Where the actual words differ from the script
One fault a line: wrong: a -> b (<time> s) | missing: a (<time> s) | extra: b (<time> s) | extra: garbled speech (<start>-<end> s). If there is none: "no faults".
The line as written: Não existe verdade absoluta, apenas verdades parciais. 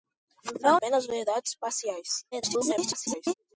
missing: existe verdade absoluta (0.8 s)
extra: garbled speech (2.3-3.3 s)